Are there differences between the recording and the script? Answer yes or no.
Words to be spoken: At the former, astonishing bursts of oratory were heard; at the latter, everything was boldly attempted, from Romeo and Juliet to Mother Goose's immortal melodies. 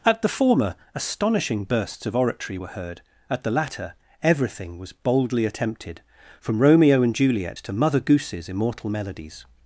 no